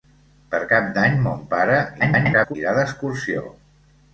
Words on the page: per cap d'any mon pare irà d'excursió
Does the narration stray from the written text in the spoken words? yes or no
yes